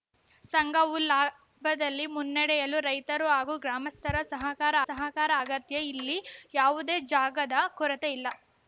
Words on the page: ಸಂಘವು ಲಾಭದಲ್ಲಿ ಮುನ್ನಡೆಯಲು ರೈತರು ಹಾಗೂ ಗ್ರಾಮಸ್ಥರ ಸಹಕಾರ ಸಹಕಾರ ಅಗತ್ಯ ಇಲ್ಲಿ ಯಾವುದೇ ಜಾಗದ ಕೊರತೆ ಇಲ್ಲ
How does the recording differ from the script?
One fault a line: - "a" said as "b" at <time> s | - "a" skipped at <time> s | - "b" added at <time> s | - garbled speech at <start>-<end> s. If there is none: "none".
none